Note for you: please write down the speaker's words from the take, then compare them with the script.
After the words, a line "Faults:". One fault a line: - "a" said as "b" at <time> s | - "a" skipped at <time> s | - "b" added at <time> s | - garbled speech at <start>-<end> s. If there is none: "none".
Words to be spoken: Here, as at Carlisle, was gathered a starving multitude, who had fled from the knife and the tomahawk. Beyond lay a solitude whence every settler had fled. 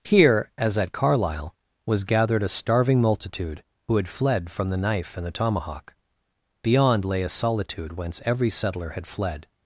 Here, as at Carlisle, was gathered a starving multitude, who had fled from the knife and the tomahawk. Beyond lay a solitude whence every settler had fled.
Faults:
none